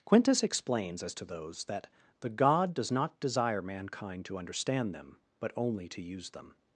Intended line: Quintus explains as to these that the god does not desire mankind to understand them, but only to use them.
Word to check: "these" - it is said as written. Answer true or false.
false